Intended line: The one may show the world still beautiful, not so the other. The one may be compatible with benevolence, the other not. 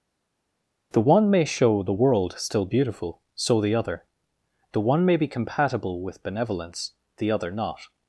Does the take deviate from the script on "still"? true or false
false